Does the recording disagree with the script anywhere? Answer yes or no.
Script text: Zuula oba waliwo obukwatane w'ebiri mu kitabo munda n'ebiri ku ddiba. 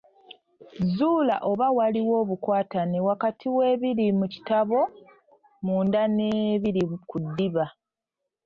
yes